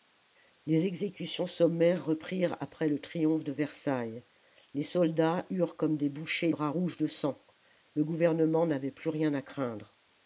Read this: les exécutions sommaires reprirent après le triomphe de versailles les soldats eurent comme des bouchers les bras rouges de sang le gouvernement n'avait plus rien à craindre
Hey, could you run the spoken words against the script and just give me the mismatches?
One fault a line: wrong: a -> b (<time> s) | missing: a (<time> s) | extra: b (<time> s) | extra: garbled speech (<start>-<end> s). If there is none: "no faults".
missing: les (6.5 s)